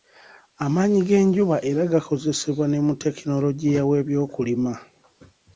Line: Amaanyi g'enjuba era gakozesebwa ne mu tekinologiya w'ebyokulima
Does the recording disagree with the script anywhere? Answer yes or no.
no